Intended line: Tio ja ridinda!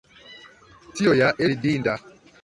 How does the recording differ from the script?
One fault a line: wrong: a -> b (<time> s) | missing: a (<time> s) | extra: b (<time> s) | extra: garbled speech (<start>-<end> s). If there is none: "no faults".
no faults